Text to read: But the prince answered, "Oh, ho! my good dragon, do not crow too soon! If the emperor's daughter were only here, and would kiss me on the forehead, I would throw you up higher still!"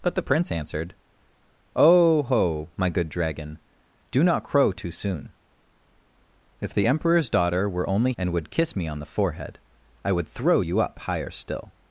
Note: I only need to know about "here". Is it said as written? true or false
false